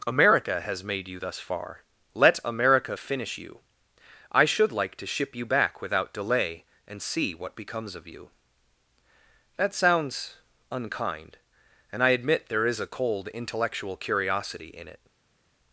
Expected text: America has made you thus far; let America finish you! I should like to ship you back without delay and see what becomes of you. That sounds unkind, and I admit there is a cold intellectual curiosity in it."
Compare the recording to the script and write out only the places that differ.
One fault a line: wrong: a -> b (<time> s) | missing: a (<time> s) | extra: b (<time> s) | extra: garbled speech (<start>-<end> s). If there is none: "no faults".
no faults